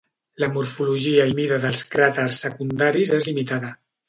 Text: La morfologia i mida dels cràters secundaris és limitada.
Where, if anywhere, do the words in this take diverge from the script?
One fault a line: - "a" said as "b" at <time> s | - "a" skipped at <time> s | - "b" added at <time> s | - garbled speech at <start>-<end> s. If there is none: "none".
none